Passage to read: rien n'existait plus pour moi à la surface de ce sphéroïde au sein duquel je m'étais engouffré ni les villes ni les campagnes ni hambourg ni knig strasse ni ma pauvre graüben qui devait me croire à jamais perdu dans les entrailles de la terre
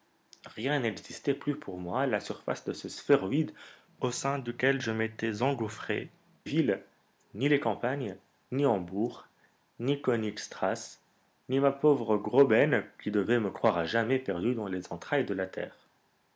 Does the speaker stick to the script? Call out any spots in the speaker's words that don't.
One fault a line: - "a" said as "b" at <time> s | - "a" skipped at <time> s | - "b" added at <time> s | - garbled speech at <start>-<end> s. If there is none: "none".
- "ni les" skipped at 6.1 s